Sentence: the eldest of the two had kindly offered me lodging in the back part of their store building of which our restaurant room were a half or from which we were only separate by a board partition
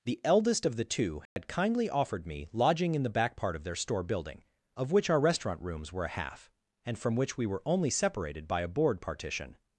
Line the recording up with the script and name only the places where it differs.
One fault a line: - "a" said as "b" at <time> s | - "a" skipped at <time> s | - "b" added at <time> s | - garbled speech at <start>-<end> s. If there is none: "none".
- "room" said as "rooms" at 5.6 s
- "or" said as "and" at 6.9 s
- "separate" said as "separated" at 7.9 s